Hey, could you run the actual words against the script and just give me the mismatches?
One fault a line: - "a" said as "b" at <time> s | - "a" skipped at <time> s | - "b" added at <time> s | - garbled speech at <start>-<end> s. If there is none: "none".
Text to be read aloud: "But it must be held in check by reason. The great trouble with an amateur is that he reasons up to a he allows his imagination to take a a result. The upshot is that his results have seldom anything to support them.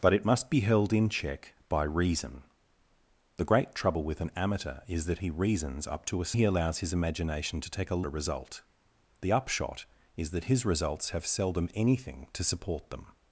none